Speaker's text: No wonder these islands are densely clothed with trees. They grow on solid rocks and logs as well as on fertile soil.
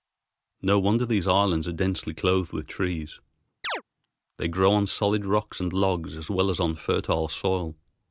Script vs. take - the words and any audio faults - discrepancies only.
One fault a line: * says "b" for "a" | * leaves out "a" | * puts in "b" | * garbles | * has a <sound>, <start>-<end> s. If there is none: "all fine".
* has a chirp, 3.6-3.8 s